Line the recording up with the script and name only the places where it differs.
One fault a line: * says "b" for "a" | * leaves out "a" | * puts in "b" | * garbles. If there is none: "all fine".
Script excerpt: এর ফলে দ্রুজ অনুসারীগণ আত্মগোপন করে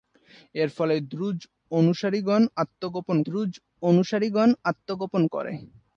* puts in "দ্রুজ অনুসারীগণ আত্মগোপন"